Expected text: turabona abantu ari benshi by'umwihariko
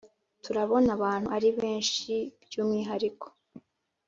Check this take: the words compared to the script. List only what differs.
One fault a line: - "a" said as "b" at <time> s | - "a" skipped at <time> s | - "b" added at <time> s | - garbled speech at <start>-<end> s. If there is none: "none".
none